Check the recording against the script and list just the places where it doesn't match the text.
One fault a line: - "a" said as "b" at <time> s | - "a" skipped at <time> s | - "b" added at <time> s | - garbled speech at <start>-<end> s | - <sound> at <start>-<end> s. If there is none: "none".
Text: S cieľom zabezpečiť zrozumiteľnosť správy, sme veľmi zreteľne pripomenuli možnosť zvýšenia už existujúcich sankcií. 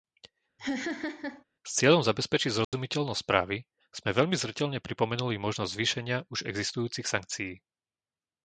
- laugh at 0.6-1.4 s
- dropout at 2.6-2.7 s